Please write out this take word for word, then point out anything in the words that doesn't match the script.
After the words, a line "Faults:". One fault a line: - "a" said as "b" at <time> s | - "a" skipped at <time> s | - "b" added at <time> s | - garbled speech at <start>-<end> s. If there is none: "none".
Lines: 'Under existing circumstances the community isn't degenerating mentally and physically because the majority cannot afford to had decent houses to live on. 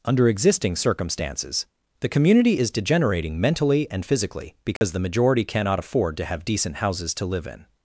'Under existing circumstances the community is degenerating mentally and physically because the majority cannot afford to have decent houses to live in.
Faults:
- "isn't" said as "is" at 2.5 s
- "had" said as "have" at 6.3 s
- "on" said as "in" at 7.5 s